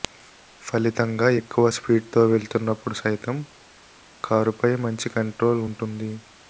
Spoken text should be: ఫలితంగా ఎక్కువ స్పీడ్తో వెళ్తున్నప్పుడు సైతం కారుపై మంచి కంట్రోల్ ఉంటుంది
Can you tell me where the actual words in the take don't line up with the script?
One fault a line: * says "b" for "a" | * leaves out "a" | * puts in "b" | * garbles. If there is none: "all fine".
all fine